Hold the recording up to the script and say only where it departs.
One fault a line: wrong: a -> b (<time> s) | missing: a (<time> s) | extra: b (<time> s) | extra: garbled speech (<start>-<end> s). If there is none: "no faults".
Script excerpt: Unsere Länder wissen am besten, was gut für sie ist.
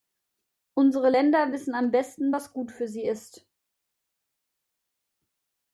no faults